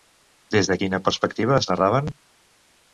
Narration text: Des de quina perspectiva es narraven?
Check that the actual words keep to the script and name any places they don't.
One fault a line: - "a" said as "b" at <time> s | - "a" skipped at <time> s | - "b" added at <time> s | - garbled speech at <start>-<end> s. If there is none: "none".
none